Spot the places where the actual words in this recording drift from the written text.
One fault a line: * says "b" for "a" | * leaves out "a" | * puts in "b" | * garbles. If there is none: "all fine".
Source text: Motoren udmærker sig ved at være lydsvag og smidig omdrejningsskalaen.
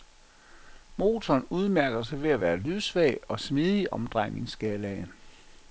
all fine